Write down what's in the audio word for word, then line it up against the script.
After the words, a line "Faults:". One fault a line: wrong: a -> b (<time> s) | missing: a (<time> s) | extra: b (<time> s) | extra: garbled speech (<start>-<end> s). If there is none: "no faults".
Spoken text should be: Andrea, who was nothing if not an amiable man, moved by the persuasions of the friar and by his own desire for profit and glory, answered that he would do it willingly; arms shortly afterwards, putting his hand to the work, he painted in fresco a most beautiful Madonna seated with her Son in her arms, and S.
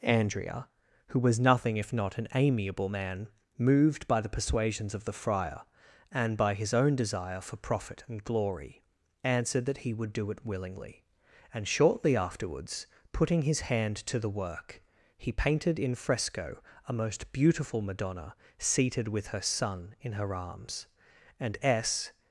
Andrea, who was nothing if not an amiable man, moved by the persuasions of the friar and by his own desire for profit and glory, answered that he would do it willingly; and shortly afterwards, putting his hand to the work, he painted in fresco a most beautiful Madonna seated with her Son in her arms, and S.
Faults:
wrong: arms -> and (11.5 s)